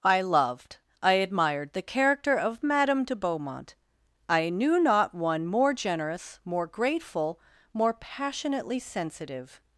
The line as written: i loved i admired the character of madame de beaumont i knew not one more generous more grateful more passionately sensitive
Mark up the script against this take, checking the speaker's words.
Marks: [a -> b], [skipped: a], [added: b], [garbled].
i loved i admired the character of madame de beaumont i knew not one more generous more grateful more passionately sensitive